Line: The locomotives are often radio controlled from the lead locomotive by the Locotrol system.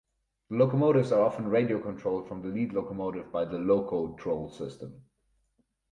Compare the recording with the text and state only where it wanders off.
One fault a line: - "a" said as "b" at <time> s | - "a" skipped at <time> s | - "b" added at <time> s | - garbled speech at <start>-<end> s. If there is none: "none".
none